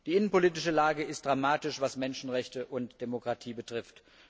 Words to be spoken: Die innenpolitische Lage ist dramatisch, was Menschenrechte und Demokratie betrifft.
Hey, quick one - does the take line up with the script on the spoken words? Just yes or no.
yes